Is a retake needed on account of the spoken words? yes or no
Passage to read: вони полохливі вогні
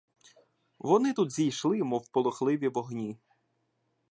yes